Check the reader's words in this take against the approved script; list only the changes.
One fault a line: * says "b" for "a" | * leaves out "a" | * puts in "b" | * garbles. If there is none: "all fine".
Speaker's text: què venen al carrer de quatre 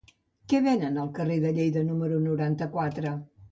* puts in "lleida número noranta"